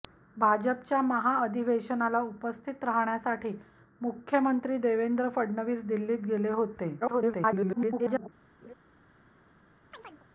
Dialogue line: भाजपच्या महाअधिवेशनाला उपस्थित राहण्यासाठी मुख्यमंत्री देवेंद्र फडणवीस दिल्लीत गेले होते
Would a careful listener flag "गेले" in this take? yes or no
no